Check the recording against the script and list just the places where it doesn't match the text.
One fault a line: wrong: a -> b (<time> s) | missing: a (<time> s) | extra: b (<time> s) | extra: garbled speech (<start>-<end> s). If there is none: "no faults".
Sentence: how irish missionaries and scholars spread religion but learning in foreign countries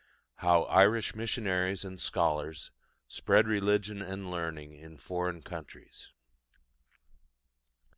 wrong: but -> and (4.0 s)